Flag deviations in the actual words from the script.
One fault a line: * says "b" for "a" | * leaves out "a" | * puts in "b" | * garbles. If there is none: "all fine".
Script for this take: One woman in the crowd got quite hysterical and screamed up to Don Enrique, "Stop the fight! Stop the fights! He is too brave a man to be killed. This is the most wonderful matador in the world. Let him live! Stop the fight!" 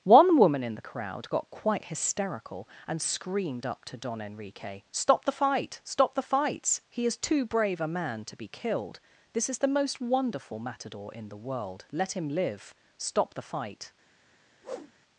all fine